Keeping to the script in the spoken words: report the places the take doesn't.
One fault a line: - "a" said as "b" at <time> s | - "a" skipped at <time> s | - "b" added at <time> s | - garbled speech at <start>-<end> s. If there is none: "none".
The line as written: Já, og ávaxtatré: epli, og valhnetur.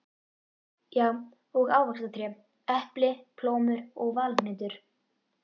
- "plómur" added at 3.4 s